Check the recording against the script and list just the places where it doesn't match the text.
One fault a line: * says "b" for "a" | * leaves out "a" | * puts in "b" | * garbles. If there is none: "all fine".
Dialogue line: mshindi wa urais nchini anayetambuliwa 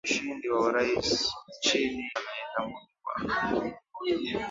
all fine